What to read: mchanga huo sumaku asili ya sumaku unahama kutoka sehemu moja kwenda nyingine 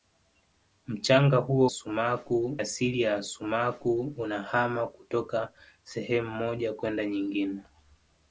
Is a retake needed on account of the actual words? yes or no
no